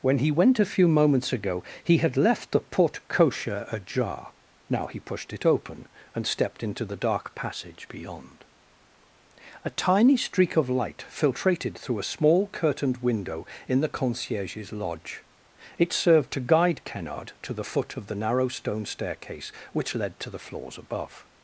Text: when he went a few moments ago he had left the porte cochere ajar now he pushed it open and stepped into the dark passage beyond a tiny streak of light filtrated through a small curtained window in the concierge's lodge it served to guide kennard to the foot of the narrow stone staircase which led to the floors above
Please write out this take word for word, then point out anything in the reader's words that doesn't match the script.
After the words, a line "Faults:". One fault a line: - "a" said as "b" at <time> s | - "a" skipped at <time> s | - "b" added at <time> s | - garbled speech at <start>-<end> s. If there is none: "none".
when he went a few moments ago he had left the porte cochere ajar now he pushed it open and stepped into the dark passage beyond a tiny streak of light filtrated through a small curtained window in the concierge's lodge it served to guide kennard to the foot of the narrow stone staircase which led to the floors above
Faults:
none